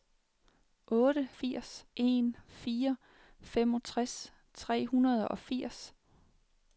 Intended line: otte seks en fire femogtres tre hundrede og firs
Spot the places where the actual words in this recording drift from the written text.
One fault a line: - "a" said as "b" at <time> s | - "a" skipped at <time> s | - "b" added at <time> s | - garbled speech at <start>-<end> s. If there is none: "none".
- "seks" said as "firs" at 1.3 s